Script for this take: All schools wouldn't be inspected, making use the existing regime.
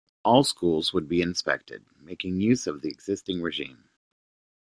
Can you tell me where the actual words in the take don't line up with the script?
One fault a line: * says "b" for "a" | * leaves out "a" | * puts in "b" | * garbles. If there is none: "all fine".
* says "would" for "wouldn't"
* puts in "of"